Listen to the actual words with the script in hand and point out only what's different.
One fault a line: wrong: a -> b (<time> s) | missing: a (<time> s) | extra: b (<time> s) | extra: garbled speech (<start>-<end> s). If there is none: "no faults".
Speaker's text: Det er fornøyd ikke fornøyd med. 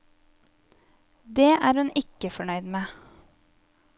wrong: fornøyd -> hun (1.8 s)